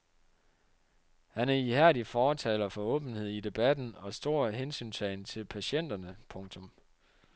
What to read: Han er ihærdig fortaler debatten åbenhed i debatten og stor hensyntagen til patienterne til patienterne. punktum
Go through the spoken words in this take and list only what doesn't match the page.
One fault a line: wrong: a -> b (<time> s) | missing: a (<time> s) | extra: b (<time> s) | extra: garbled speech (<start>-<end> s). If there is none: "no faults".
wrong: debatten -> for (2.7 s)
missing: til patienterne (6.2 s)